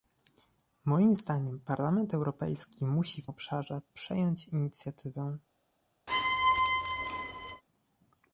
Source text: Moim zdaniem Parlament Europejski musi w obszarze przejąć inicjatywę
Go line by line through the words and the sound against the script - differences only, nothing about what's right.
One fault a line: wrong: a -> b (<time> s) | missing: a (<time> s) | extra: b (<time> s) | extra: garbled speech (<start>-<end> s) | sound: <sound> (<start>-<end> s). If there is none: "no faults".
sound: squeak (6.1-7.6 s)